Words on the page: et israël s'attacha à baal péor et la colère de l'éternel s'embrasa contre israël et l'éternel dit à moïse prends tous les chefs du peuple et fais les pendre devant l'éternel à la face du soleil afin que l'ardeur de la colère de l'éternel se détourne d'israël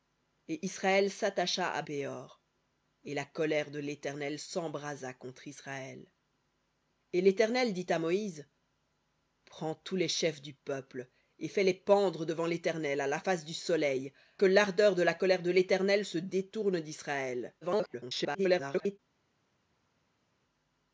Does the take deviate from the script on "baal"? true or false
true